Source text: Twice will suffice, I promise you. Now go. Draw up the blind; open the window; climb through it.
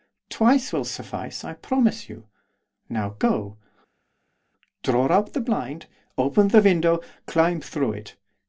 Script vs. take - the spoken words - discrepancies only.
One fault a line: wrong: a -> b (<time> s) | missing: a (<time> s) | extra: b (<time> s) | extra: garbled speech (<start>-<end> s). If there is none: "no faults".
no faults